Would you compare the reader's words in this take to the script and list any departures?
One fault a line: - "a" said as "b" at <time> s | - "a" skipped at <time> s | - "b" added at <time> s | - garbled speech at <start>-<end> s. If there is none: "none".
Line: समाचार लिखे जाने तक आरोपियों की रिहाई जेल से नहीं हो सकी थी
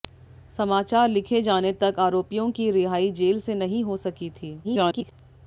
- garbled speech at 4.6-5.1 s